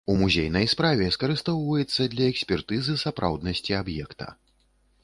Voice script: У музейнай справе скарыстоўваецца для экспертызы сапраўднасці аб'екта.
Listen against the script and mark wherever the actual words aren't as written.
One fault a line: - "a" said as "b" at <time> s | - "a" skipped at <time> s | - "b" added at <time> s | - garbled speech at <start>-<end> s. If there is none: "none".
none